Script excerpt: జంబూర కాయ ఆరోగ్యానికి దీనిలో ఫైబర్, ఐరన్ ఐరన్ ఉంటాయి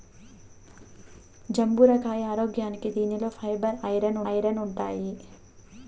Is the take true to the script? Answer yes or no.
yes